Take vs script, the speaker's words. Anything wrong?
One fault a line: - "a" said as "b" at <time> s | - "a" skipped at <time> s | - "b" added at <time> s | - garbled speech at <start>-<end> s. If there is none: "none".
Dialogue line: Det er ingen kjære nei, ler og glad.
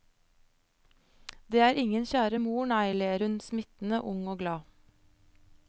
- "mor" added at 2.4 s
- "hun smittende ung" added at 3.2 s